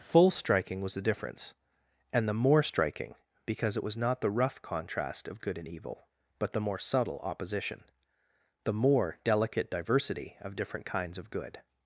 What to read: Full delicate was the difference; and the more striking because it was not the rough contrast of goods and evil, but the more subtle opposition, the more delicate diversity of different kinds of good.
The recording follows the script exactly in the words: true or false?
false